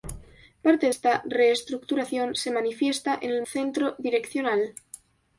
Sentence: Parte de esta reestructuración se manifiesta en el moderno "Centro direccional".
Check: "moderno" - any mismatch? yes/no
yes